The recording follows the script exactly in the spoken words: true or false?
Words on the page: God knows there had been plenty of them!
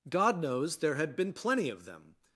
true